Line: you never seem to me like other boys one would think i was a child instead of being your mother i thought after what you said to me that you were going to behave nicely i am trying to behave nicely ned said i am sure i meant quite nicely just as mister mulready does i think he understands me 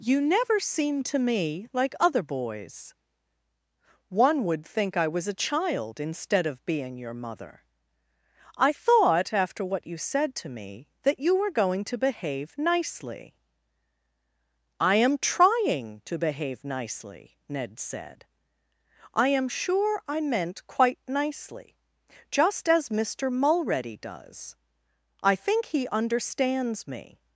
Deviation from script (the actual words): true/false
false